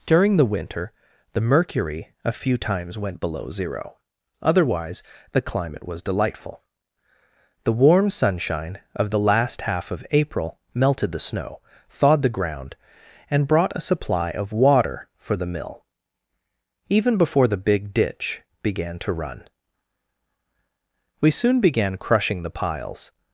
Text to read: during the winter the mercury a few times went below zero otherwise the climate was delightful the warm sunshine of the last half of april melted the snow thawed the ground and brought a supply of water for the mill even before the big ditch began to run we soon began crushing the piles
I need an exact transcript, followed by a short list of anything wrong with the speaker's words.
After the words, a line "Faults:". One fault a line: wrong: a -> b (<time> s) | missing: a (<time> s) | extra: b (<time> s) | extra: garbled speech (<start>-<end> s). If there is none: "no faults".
during the winter the mercury a few times went below zero otherwise the climate was delightful the warm sunshine of the last half of april melted the snow thawed the ground and brought a supply of water for the mill even before the big ditch began to run we soon began crushing the piles
Faults:
no faults